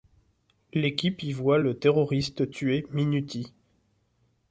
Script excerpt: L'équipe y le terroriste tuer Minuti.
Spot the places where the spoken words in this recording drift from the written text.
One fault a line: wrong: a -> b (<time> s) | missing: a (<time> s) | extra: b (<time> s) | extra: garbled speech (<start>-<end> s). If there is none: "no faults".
extra: voit (1.3 s)